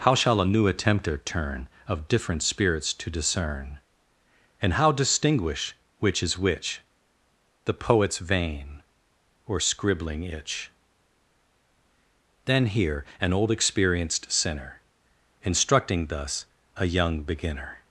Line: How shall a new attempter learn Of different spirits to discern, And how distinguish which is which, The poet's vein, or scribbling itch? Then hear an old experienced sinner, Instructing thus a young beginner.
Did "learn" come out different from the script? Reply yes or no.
yes